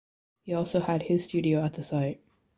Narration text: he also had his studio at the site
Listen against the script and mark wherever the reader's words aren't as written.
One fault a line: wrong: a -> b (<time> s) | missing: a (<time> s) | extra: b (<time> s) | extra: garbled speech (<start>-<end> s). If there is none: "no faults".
no faults